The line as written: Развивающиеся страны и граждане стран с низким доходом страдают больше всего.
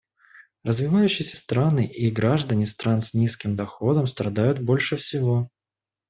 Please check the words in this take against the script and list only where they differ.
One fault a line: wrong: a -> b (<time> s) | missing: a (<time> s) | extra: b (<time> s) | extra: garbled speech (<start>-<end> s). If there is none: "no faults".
no faults